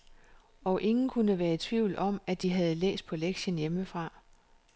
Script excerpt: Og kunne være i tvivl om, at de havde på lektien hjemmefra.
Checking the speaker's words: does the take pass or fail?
fail